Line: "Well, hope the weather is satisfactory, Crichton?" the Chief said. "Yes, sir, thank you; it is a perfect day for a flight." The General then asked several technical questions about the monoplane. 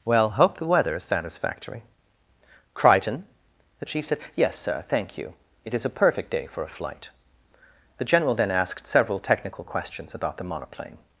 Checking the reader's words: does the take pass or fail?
pass